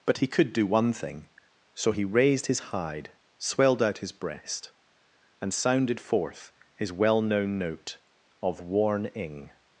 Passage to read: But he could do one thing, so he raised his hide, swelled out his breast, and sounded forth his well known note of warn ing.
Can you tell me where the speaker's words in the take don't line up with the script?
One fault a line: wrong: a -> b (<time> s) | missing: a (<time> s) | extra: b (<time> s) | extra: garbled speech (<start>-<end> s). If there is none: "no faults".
no faults